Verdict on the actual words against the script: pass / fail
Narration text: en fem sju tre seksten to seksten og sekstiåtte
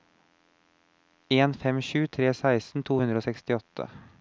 fail